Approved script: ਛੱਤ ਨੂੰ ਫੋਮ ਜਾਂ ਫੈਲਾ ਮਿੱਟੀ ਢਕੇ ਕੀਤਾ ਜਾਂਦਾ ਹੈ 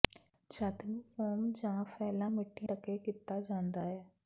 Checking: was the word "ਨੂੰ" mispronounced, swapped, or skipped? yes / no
no